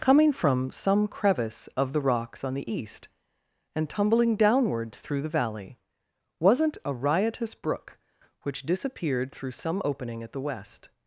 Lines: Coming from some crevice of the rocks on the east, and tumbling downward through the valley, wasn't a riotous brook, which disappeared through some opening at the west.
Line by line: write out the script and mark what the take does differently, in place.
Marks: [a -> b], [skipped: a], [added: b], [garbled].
Coming from some crevice of the rocks on the east, and tumbling downward through the valley, wasn't a riotous brook, which disappeared through some opening at the west.